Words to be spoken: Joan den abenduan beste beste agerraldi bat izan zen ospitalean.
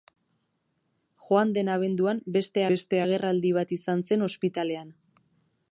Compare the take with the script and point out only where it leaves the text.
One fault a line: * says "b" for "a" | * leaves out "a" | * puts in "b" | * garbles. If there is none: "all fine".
all fine